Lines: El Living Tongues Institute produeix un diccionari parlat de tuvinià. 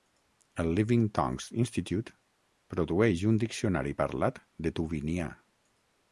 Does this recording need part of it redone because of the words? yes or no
no